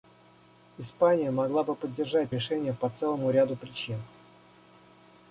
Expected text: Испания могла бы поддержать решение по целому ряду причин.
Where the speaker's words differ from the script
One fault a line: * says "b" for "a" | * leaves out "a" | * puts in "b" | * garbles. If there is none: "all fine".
all fine